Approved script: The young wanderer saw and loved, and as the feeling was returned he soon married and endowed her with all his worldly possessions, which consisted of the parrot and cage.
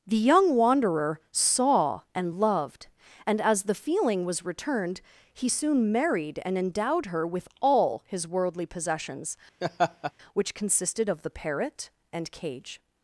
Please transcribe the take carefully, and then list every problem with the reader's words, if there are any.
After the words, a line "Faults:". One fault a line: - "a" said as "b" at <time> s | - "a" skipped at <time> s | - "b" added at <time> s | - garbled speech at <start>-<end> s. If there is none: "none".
The young wanderer saw and loved, and as the feeling was returned he soon married and endowed her with all his worldly possessions, which consisted of the parrot and cage.
Faults:
none